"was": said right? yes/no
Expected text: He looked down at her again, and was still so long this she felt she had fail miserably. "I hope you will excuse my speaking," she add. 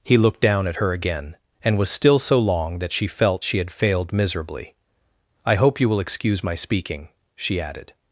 yes